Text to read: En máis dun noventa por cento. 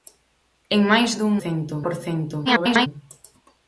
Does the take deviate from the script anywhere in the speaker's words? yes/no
yes